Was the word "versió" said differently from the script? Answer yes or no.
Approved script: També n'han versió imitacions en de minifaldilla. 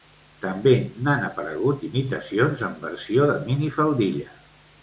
yes